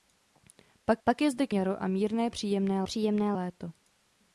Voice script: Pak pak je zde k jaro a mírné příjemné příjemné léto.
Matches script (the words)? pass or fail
pass